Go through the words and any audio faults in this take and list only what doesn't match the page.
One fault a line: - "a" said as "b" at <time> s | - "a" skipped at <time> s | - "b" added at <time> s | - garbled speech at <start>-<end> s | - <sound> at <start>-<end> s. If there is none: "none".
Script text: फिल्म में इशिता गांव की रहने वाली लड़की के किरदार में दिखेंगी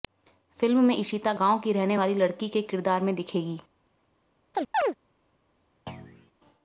- chirp at 4.5-4.9 s
- thud at 5.9-6.3 s